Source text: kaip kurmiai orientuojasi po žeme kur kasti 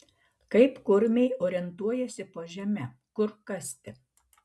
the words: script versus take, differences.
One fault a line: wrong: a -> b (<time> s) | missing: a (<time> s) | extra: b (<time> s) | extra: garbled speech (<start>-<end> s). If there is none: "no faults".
no faults